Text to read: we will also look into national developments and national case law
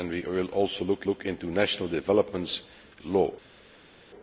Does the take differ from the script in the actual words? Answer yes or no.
yes